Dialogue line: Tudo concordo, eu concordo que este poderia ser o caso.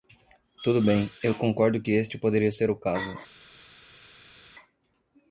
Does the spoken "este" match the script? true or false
true